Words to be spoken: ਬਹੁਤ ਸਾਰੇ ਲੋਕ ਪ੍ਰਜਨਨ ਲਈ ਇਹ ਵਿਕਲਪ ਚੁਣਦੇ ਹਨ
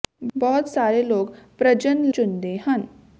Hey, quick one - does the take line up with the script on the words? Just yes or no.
no